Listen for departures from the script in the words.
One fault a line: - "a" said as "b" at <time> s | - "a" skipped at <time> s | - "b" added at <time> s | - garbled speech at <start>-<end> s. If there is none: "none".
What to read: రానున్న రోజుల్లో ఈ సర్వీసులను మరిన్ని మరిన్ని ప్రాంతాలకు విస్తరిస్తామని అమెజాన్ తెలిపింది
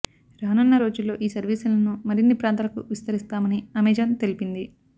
- "మరిన్ని" skipped at 2.4 s